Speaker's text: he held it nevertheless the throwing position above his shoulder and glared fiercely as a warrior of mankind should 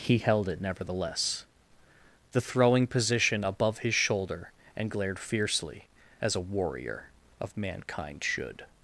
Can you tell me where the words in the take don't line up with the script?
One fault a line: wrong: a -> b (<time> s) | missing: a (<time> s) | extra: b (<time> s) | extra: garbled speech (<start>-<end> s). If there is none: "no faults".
no faults